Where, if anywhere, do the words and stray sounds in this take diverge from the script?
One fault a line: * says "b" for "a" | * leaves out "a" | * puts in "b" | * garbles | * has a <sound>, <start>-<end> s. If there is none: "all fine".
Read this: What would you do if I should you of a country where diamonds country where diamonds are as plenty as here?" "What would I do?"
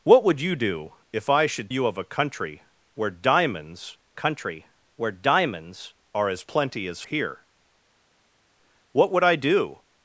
all fine